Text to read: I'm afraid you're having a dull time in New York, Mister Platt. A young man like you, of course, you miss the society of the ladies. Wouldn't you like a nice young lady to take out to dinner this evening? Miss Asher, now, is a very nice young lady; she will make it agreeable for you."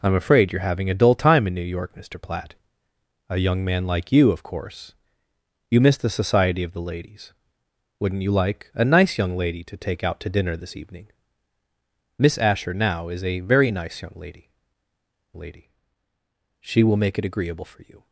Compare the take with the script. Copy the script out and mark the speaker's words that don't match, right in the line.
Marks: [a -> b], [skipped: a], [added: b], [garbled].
I'm afraid you're having a dull time in New York, Mister Platt. A young man like you, of course, you miss the society of the ladies. Wouldn't you like a nice young lady to take out to dinner this evening? Miss Asher, now, is a very nice young lady; [added: lady] she will make it agreeable for you."